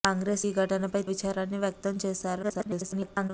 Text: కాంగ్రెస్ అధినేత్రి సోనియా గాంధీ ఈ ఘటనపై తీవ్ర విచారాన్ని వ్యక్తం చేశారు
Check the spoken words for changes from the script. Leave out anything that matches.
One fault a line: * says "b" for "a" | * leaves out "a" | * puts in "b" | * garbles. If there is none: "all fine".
* leaves out "అధినేత్రి సోనియా గాంధీ"
* leaves out "తీవ్ర"
* garbles